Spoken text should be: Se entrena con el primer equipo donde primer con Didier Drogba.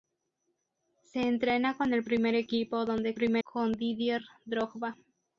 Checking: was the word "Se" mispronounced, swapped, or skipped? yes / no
no